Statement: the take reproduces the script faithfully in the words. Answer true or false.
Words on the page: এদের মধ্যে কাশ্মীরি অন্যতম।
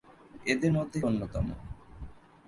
false